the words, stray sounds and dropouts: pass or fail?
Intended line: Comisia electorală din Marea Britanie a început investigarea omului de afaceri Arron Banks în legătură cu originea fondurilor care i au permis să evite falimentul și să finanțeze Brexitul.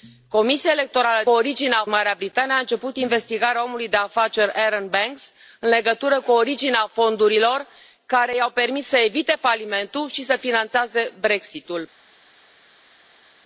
fail